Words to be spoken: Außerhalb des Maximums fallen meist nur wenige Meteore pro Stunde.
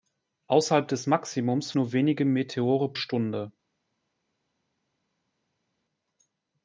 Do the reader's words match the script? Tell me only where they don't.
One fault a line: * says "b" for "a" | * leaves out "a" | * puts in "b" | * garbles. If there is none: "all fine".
* leaves out "fallen meist"
* leaves out "pro"